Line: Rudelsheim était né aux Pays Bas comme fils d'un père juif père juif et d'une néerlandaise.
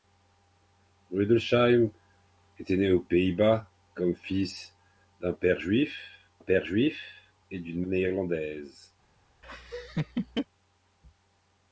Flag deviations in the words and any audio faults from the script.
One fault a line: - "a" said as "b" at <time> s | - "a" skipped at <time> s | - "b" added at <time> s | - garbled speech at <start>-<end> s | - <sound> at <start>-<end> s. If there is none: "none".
- laugh at 9.4-10.5 s